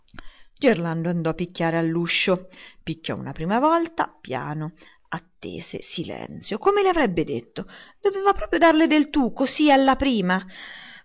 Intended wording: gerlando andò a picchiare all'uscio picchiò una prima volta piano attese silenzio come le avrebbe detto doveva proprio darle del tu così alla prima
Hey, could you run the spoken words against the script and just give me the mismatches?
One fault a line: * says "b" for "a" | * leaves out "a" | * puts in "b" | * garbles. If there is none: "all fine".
all fine